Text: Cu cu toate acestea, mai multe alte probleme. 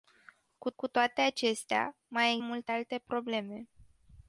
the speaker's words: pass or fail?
pass